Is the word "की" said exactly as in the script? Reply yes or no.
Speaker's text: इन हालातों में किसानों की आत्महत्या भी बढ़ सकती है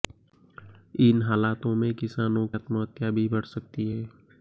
no